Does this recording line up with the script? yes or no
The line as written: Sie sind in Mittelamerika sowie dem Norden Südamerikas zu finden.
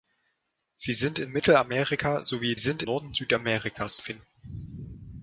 no